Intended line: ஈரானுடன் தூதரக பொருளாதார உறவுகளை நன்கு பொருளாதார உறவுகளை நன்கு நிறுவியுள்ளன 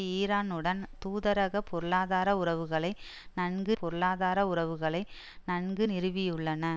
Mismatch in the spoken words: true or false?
false